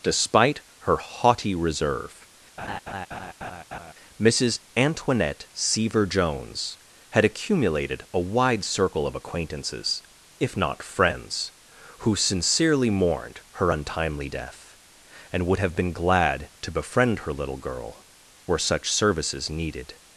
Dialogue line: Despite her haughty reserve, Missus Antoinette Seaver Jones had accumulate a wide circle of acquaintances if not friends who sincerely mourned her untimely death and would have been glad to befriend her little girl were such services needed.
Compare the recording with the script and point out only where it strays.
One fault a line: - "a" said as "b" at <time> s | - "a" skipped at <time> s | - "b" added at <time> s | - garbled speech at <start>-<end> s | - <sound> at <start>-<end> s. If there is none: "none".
- laugh at 2.6-3.9 s
- "accumulate" said as "accumulated" at 7.2 s